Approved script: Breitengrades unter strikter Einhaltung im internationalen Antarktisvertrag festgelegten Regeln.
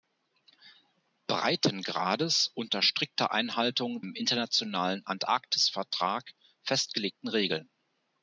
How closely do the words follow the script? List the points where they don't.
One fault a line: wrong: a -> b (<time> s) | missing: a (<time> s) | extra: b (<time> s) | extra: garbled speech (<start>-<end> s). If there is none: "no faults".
no faults